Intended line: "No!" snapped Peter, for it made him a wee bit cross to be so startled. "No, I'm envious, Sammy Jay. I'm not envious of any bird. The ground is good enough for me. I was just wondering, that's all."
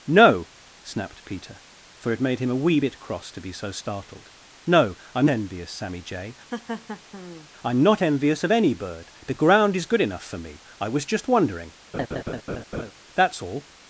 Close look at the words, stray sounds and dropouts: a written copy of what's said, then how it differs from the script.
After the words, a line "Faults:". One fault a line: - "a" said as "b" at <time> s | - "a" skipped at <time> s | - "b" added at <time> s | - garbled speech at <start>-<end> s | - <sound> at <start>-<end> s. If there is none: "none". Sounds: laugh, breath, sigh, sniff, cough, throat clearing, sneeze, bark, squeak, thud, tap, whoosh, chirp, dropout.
"No!" snapped Peter, for it made him a wee bit cross to be so startled. "No, I'm envious, Sammy Jay. I'm not envious of any bird. The ground is good enough for me. I was just wondering, that's all."
Faults:
- laugh at 6.5-7.5 s
- laugh at 11.9-12.9 s